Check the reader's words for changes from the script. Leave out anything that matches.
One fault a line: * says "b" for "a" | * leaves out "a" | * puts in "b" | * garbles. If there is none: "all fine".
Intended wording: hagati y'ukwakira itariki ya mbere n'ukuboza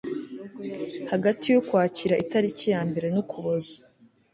all fine